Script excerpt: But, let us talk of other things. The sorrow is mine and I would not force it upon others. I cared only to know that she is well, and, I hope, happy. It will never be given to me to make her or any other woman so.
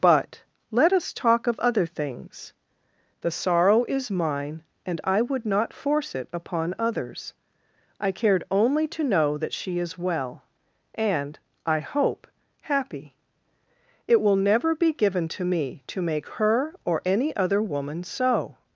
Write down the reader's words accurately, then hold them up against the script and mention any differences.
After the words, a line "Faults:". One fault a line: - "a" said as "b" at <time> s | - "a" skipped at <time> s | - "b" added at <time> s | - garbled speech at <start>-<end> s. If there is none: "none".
But, let us talk of other things. The sorrow is mine and I would not force it upon others. I cared only to know that she is well, and, I hope, happy. It will never be given to me to make her or any other woman so.
Faults:
none